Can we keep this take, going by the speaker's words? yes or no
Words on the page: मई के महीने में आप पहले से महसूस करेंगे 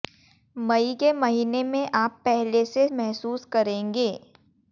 yes